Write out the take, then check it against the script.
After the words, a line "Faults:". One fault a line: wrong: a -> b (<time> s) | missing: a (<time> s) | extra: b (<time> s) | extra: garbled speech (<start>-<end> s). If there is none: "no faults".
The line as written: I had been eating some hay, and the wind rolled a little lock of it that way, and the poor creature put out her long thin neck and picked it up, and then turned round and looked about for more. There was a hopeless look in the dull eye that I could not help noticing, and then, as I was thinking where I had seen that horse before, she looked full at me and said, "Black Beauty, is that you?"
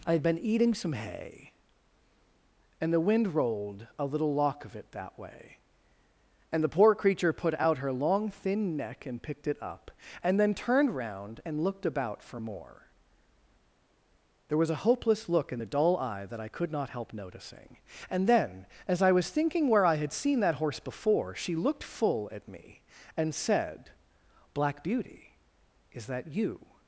I had been eating some hay, and the wind rolled a little lock of it that way, and the poor creature put out her long thin neck and picked it up, and then turned round and looked about for more. There was a hopeless look in the dull eye that I could not help noticing, and then, as I was thinking where I had seen that horse before, she looked full at me and said, "Black Beauty, is that you?"
Faults:
no faults